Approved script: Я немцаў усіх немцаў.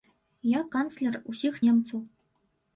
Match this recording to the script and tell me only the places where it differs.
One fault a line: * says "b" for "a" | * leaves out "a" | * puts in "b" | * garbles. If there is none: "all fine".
* says "канцлер" for "немцаў"